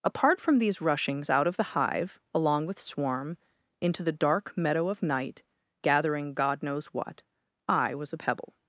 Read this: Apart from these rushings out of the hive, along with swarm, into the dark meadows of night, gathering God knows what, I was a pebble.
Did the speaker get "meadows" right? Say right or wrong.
wrong